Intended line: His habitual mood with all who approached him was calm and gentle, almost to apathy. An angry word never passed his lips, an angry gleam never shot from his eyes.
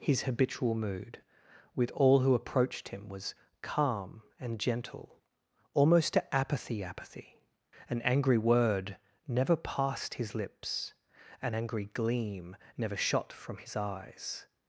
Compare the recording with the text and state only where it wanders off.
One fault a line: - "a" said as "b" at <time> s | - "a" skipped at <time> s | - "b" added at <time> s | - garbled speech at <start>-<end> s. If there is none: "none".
- "apathy" added at 6.8 s